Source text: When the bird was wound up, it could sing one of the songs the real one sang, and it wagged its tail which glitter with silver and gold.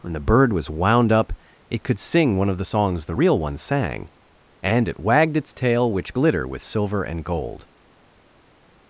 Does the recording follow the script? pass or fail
pass